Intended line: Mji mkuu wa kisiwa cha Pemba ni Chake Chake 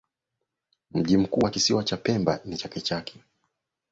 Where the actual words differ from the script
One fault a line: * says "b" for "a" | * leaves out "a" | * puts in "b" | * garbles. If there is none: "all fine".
all fine